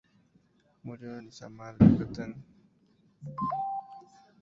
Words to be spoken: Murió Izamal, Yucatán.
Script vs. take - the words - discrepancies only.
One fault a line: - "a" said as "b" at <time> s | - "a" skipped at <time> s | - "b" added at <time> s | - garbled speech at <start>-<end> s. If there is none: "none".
- "en" added at 1.1 s